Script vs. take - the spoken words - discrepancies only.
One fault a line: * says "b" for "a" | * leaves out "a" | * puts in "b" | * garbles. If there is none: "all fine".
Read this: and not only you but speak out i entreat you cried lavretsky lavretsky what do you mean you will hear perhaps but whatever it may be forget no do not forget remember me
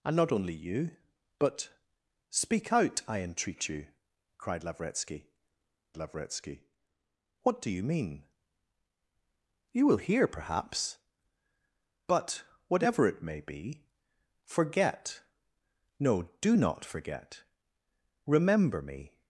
all fine